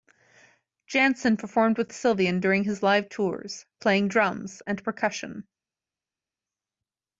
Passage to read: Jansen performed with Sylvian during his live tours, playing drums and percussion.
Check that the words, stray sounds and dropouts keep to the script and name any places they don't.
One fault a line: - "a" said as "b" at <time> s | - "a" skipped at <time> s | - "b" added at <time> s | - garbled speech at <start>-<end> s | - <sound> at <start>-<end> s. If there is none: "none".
none